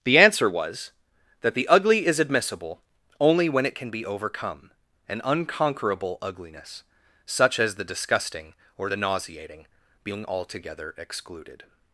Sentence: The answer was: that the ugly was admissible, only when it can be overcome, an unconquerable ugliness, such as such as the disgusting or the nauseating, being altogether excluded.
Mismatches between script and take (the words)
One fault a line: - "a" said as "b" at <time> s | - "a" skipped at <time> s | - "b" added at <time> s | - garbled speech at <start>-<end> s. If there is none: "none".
- "was" said as "is" at 2.0 s
- "such as" skipped at 7.8 s